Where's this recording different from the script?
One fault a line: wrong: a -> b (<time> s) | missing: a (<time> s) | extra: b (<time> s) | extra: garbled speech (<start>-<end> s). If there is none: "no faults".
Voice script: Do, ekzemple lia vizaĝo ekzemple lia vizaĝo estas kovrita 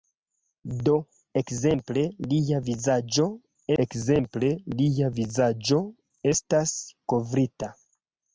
no faults